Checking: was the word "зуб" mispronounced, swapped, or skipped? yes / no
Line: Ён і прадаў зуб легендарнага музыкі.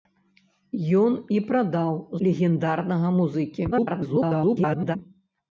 yes